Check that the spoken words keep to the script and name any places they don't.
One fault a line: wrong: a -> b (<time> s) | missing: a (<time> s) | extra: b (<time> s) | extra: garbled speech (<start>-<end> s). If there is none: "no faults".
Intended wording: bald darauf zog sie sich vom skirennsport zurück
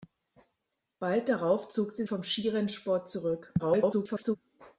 missing: sich (2.0 s)
extra: garbled speech (3.6-4.4 s)